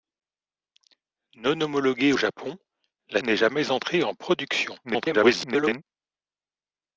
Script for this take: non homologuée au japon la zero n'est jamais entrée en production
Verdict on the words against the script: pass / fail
fail